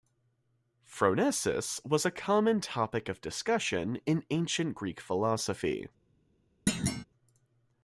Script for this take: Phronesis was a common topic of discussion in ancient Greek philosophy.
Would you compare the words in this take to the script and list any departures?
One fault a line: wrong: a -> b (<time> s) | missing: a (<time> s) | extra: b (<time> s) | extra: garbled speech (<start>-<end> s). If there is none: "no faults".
no faults